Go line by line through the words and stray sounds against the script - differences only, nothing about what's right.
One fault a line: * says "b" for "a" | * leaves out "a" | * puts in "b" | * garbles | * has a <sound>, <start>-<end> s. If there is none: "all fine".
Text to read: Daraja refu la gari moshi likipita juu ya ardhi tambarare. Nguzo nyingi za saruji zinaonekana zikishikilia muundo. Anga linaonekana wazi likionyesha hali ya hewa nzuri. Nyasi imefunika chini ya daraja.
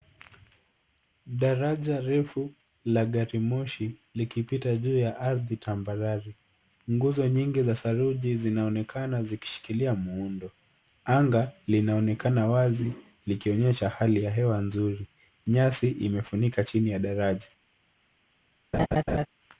* has a laugh, 18.7-19.3 s